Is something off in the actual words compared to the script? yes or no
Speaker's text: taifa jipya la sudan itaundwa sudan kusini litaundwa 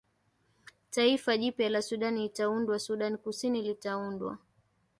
no